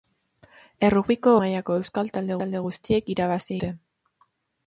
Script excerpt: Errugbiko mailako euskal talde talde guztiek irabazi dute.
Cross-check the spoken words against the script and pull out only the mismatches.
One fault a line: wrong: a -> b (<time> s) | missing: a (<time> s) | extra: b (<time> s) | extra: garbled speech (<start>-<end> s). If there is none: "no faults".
no faults